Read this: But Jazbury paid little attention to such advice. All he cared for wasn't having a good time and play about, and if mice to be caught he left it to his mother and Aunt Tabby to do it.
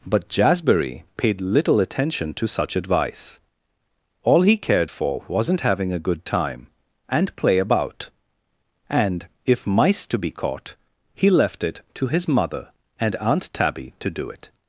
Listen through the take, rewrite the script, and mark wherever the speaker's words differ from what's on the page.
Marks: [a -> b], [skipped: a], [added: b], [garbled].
But Jazbury paid little attention to such advice. All he cared for wasn't having a good time and play about, and if mice to be caught he left it to his mother and Aunt Tabby to do it.